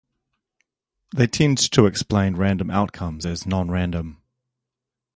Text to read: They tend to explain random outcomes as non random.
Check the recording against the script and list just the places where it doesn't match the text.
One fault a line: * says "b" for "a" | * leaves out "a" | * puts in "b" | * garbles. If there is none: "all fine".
all fine